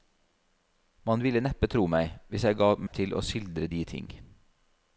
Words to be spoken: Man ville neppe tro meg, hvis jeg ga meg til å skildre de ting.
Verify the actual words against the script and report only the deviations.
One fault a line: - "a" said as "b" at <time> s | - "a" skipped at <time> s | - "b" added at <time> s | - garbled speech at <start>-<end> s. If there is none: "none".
none